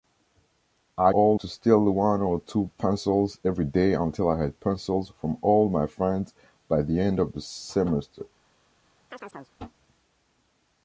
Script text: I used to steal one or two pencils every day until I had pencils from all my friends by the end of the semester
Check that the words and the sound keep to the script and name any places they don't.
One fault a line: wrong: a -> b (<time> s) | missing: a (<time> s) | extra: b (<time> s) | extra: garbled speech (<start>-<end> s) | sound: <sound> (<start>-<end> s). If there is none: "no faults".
wrong: used -> all (1.1 s)
sound: chirp (9.1-9.5 s)